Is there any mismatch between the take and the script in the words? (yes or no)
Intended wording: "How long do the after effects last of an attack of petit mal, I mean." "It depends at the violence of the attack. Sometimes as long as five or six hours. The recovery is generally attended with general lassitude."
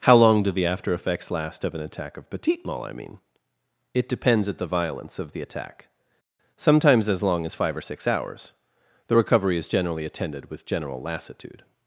no